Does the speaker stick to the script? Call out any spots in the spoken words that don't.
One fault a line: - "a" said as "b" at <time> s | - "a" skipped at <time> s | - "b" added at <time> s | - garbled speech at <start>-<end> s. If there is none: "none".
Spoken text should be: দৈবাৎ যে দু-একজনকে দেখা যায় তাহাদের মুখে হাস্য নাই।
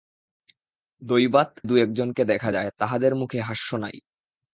- "যে" skipped at 1.5 s